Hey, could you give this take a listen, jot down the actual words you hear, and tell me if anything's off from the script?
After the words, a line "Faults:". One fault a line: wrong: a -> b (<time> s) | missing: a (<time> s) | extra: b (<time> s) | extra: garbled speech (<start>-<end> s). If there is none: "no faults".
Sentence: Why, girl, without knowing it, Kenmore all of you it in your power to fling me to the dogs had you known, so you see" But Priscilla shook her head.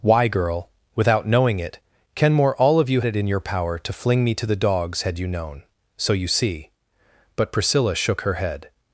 Why, girl, without knowing it, Kenmore all of you it in your power to fling me to the dogs had you known, so you see" But Priscilla shook her head.
Faults:
no faults